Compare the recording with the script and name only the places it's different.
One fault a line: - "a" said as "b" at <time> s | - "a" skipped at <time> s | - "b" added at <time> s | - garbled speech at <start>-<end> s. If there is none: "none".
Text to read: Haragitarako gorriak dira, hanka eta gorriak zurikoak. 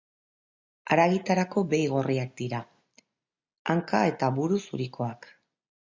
- "behi" added at 1.8 s
- "gorriak" said as "buru" at 4.4 s